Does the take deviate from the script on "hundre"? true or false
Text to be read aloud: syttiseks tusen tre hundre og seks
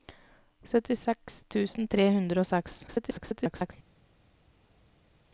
false